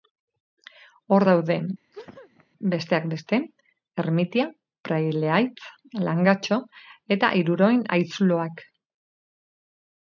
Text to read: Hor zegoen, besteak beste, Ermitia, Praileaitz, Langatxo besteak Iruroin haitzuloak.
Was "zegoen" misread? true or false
true